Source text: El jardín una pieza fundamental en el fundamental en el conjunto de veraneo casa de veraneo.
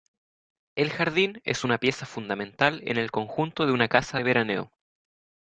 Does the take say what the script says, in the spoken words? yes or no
no